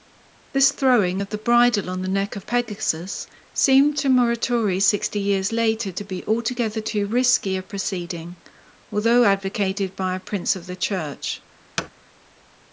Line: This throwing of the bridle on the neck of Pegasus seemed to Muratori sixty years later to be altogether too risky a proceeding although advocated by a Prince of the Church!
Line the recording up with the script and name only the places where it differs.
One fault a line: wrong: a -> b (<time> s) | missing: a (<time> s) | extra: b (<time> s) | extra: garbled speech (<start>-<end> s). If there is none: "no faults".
no faults